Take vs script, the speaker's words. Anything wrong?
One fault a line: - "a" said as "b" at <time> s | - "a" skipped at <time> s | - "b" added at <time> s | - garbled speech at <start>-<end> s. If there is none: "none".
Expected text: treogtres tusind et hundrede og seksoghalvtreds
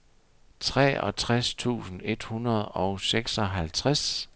none